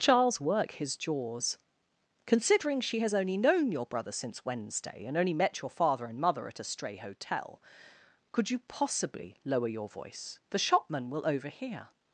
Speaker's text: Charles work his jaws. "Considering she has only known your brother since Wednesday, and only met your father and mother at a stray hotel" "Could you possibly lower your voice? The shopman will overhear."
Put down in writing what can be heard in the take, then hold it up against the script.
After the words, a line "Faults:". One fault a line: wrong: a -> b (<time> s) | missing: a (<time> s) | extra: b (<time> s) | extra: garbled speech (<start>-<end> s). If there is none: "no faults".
Charles work his jaws. "Considering she has only known your brother since Wednesday, and only met your father and mother at a stray hotel" "Could you possibly lower your voice? The shopman will overhear."
Faults:
no faults